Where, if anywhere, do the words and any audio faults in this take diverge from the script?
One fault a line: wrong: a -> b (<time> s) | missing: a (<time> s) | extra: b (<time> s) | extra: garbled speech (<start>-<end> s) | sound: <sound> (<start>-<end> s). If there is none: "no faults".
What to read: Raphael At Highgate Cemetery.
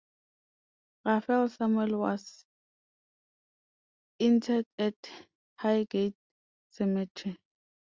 extra: Samuel was interred (1.5 s)